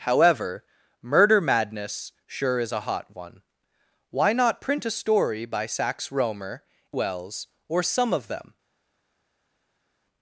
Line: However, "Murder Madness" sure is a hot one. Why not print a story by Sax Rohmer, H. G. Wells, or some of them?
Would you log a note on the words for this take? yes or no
yes